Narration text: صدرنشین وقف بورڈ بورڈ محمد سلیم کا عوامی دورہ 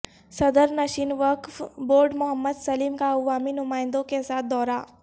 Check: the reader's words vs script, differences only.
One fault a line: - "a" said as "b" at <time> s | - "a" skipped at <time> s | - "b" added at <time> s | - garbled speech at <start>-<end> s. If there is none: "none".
- "بورڈ" skipped at 2.1 s
- "نمائندوں کے ساتھ" added at 3.5 s